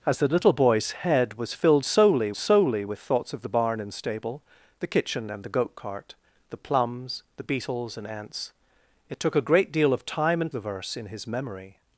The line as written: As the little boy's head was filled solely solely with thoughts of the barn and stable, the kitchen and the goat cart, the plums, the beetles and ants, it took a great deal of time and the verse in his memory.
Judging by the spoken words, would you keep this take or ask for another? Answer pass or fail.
pass